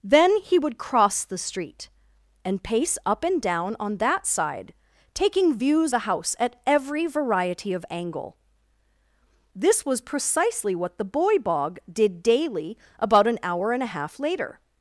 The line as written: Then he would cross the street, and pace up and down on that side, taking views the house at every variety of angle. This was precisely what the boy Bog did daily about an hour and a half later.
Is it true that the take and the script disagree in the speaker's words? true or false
false